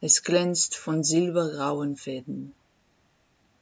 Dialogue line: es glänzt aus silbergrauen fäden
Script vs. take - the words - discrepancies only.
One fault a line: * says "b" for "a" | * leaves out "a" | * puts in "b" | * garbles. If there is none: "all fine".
* says "von" for "aus"